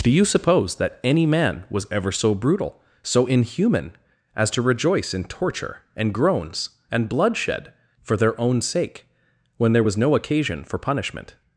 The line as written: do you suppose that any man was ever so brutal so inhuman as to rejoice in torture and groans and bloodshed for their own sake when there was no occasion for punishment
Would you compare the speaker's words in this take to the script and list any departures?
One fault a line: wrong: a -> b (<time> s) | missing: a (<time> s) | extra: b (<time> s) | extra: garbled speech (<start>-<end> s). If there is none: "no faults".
no faults